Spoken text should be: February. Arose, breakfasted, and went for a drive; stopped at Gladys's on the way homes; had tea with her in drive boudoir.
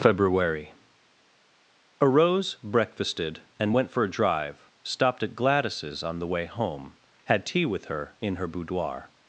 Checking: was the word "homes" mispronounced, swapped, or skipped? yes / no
yes